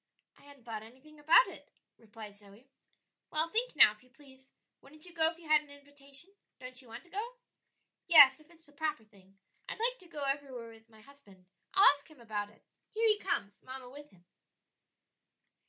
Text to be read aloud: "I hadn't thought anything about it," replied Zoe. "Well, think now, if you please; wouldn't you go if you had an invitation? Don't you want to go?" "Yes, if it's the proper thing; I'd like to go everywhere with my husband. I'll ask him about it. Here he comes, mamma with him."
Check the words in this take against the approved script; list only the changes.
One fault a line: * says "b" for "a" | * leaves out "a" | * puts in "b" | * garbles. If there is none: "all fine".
all fine